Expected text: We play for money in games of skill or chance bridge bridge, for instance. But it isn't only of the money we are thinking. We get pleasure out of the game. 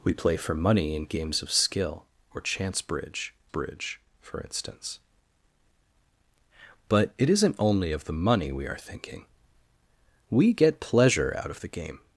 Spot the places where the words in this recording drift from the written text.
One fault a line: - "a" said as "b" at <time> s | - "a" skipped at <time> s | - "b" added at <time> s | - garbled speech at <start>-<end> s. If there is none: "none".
none